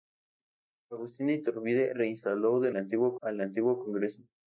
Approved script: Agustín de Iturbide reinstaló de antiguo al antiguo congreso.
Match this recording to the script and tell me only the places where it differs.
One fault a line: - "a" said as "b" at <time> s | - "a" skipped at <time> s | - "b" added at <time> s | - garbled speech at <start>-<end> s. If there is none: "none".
none